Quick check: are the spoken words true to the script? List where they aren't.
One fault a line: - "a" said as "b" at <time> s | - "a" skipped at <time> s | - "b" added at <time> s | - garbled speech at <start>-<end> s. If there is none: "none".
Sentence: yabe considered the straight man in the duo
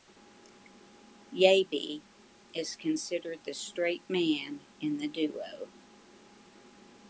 - "is" added at 2.5 s